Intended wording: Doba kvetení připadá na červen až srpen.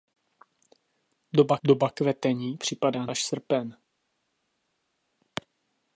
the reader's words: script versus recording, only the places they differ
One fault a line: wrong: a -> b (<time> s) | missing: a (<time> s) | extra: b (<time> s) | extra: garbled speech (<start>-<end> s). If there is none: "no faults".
extra: doba (1.6 s)
missing: na červen (3.1 s)